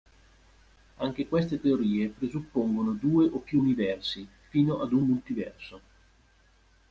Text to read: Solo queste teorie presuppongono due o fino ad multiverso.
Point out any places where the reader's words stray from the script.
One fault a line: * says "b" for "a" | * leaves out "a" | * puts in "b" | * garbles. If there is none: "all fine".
* says "Anche" for "Solo"
* puts in "più universi"
* puts in "un"